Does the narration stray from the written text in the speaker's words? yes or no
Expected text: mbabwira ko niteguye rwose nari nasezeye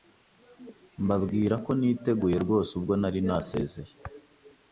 yes